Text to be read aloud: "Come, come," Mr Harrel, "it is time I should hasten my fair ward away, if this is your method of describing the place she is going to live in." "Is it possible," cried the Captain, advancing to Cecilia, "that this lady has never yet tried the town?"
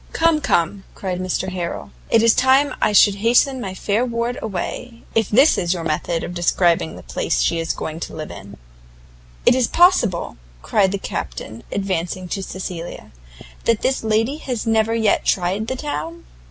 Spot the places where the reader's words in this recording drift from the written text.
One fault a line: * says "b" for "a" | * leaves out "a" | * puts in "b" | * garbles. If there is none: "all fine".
* puts in "cried"